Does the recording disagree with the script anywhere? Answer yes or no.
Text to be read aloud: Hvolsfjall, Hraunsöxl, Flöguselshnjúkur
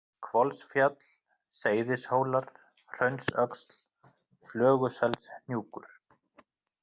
yes